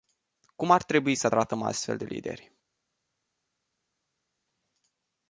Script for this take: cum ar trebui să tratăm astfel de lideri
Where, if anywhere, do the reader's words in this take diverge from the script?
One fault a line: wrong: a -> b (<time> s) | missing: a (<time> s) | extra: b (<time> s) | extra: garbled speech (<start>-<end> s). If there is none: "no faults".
no faults